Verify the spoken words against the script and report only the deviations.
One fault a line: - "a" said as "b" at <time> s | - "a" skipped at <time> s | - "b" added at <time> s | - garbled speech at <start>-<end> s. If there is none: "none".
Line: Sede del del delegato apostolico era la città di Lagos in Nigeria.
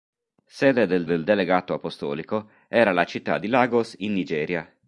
none